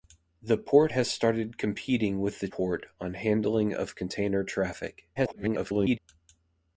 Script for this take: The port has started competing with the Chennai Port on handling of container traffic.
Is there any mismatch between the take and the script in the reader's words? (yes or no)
yes